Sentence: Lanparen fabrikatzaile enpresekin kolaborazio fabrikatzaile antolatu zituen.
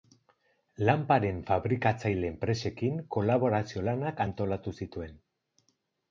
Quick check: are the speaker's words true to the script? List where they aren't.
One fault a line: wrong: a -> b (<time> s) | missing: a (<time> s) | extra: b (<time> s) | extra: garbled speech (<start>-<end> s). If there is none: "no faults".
wrong: fabrikatzaile -> lanak (3.9 s)